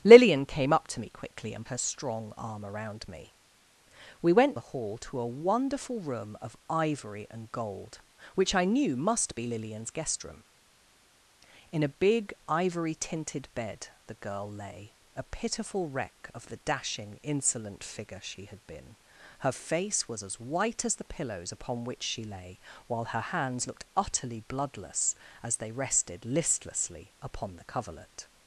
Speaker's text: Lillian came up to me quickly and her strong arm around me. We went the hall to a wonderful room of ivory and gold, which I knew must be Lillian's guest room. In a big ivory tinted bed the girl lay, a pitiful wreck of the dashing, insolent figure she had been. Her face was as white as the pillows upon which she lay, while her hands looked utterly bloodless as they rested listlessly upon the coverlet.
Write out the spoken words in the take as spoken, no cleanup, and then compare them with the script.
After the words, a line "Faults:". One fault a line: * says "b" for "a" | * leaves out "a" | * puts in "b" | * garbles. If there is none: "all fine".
Lillian came up to me quickly and her strong arm around me. We went the hall to a wonderful room of ivory and gold, which I knew must be Lillian's guest room. In a big ivory tinted bed the girl lay, a pitiful wreck of the dashing, insolent figure she had been. Her face was as white as the pillows upon which she lay, while her hands looked utterly bloodless as they rested listlessly upon the coverlet.
Faults:
all fine